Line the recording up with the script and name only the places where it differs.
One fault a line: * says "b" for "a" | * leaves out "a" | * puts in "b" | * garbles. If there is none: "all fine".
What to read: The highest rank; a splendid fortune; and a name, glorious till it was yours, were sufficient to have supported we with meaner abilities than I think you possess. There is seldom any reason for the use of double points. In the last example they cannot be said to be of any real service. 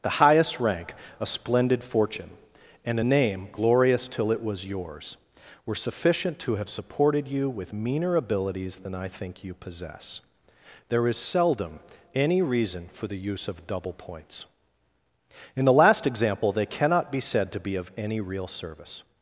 * says "you" for "we"